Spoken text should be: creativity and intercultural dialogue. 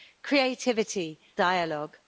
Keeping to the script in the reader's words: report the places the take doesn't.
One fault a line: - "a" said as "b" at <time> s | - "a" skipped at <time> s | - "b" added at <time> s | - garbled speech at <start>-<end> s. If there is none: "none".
- "and intercultural" skipped at 1.2 s